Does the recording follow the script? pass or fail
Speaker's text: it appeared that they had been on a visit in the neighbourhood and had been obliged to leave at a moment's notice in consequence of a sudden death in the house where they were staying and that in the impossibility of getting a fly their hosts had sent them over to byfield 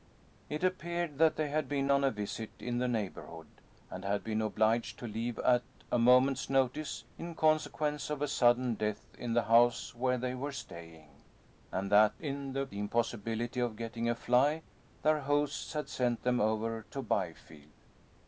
pass